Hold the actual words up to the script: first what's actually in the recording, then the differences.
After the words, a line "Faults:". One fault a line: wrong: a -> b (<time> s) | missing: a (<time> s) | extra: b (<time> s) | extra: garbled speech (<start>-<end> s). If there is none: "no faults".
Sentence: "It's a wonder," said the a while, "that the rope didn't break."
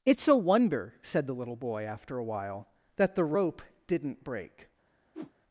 "It's a wonder," said the little boy, after a while, "that the rope didn't break."
Faults:
extra: little boy after (1.4 s)